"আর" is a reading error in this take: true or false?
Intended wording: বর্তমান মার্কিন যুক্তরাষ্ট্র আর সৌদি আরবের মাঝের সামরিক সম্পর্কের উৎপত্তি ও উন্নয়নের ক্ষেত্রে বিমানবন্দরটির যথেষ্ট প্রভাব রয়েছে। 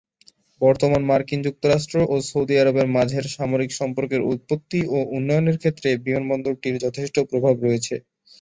true